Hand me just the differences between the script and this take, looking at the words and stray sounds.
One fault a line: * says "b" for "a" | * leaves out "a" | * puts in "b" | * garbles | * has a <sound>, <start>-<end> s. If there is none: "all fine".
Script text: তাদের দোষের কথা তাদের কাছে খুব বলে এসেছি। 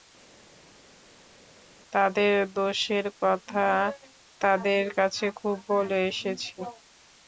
all fine